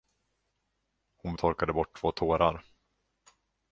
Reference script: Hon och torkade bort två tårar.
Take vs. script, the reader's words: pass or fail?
pass